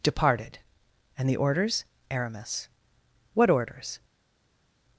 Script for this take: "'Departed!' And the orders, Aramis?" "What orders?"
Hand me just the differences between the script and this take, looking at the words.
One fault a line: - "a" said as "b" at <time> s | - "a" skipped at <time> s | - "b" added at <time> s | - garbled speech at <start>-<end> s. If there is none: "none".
none